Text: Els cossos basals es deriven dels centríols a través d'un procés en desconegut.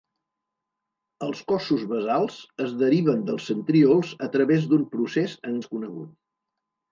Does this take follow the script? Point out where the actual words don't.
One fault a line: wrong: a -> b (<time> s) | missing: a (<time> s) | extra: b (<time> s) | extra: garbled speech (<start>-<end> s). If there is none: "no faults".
no faults